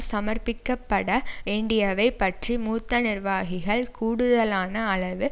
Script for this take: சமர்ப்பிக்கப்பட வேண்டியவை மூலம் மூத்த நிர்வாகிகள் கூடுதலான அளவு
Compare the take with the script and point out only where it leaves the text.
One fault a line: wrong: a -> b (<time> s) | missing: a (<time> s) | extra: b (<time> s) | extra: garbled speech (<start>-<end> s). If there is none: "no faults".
wrong: மூலம் -> பற்றி (2.2 s)